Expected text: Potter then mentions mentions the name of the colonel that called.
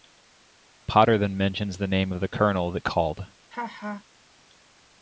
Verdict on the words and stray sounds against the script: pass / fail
fail